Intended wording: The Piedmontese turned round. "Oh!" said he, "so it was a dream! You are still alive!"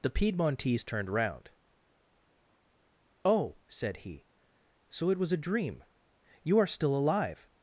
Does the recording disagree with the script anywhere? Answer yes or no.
no